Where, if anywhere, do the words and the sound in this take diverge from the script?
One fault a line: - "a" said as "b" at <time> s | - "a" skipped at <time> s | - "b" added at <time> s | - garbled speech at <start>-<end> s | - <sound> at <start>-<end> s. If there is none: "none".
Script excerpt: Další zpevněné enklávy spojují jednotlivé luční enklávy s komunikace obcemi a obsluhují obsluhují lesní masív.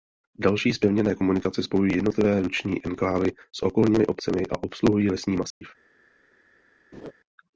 - "enklávy" said as "komunikace" at 1.1 s
- "komunikace" said as "okolními" at 3.6 s
- "obsluhují" skipped at 5.1 s
- dropout at 5.5-5.6 s
- laugh at 6.9-7.1 s